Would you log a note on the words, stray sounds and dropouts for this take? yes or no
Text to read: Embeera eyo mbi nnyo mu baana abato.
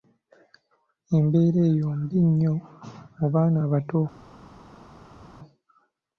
no